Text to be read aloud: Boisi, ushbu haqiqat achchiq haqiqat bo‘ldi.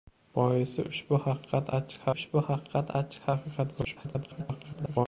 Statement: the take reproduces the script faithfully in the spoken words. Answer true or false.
false